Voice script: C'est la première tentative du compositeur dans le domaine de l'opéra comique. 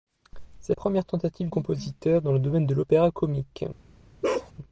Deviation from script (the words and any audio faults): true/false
true